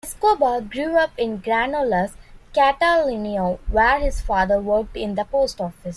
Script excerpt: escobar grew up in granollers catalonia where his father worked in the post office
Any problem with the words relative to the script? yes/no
no